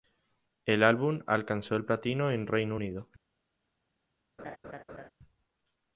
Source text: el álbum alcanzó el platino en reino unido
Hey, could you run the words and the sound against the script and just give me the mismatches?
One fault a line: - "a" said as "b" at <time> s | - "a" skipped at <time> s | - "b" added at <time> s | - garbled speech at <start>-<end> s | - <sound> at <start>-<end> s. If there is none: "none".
- laugh at 4.4-5.1 s